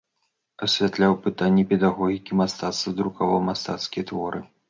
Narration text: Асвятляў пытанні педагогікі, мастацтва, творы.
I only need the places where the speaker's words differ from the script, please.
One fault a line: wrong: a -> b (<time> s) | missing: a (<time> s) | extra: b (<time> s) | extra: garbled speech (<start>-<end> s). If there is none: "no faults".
extra: друкаваў мастацкія (3.0 s)